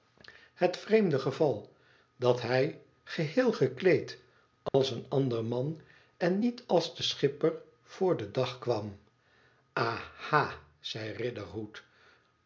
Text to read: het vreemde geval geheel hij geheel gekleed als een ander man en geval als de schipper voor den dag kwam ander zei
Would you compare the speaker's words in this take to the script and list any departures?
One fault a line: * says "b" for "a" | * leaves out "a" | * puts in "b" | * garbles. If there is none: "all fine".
* says "dat" for "geheel"
* says "niet" for "geval"
* says "aha" for "ander"